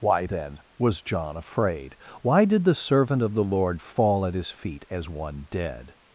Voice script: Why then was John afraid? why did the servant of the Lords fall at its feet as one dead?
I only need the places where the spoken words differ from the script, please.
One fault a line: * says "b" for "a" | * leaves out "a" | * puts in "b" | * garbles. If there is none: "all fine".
* says "Lord" for "Lords"
* says "his" for "its"